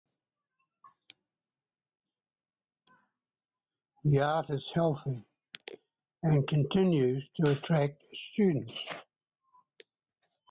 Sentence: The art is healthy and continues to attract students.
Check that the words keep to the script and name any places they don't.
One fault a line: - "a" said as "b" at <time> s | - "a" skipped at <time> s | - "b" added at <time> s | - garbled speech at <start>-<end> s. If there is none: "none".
none